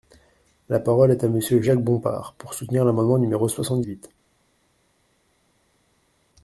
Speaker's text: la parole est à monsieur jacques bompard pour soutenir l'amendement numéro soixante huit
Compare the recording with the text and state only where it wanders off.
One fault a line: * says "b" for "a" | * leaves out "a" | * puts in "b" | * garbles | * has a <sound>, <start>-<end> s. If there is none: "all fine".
all fine